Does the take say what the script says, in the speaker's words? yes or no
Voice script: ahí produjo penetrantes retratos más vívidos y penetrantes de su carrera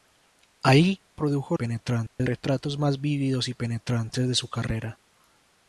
yes